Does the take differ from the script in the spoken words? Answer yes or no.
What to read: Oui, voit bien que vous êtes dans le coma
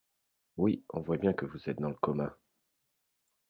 yes